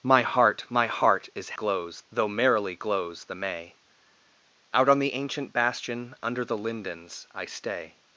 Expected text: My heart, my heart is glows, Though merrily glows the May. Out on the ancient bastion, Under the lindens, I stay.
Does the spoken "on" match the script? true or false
true